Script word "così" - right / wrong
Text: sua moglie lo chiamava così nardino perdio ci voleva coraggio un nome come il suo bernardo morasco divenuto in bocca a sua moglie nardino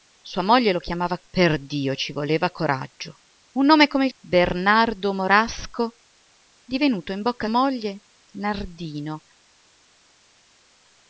wrong